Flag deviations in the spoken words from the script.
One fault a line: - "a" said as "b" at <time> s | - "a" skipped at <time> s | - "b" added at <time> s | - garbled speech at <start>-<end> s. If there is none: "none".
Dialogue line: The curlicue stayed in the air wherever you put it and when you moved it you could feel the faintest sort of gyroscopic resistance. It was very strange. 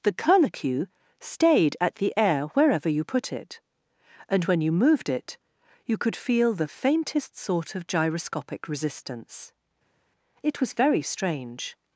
- "in" said as "at" at 1.8 s